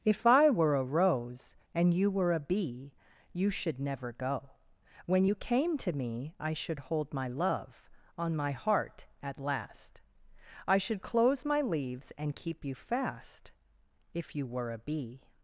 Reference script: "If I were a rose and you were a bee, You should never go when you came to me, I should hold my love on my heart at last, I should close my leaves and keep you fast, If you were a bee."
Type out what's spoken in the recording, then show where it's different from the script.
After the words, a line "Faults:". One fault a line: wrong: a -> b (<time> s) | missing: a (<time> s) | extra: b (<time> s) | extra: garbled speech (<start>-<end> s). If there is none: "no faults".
"If I were a rose and you were a bee, You should never go when you came to me, I should hold my love on my heart at last, I should close my leaves and keep you fast, If you were a bee."
Faults:
no faults